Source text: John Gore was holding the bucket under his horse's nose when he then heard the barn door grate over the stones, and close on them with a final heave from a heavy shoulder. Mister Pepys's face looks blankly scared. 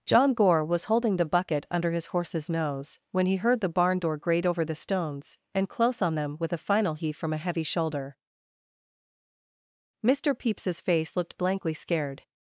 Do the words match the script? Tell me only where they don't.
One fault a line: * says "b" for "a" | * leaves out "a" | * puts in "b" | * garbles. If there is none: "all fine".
* leaves out "then"
* says "looked" for "looks"